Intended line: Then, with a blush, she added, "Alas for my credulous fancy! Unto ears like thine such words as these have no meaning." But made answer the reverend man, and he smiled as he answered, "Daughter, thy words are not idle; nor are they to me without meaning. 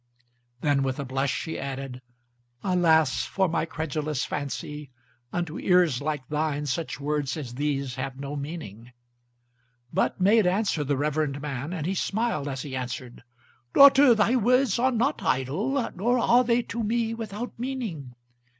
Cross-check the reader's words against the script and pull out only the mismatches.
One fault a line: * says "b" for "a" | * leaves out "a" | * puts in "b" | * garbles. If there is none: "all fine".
all fine